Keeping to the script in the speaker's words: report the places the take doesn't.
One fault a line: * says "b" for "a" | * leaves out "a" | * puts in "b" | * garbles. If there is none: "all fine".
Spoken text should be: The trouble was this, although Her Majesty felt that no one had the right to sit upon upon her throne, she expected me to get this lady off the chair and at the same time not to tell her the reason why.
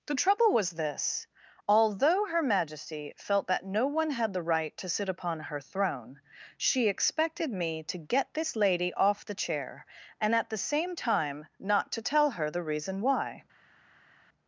* leaves out "upon"